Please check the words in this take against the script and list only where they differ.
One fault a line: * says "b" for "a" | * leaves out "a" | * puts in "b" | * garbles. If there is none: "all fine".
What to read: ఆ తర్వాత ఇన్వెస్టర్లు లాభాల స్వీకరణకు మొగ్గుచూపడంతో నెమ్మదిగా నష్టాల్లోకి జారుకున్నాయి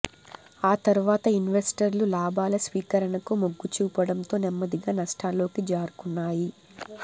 all fine